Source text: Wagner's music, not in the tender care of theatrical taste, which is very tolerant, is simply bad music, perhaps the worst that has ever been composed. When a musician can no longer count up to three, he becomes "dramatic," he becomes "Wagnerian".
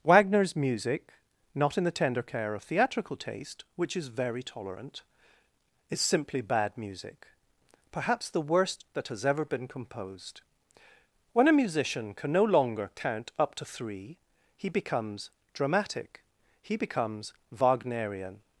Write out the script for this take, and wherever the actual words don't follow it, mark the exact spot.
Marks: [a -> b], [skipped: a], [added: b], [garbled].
Wagner's music, not in the tender care of theatrical taste, which is very tolerant, is simply bad music, perhaps the worst that has ever been composed. When a musician can no longer count up to three, he becomes "dramatic," he becomes "Wagnerian".